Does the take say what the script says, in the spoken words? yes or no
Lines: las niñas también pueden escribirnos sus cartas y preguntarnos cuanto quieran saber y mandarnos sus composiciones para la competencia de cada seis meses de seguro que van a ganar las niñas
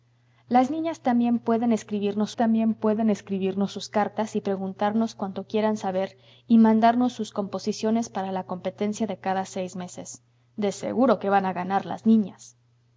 no